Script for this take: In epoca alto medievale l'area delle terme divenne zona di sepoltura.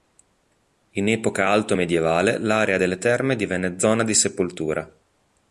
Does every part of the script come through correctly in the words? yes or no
yes